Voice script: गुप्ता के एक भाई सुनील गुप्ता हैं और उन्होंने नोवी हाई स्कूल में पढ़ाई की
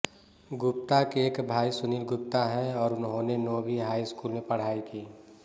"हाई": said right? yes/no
yes